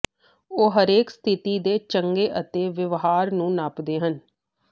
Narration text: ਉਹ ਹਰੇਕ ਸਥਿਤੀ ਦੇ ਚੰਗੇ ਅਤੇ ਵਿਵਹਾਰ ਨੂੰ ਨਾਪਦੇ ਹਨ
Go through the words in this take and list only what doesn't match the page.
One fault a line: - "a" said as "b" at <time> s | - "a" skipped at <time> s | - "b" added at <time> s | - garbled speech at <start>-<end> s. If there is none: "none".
none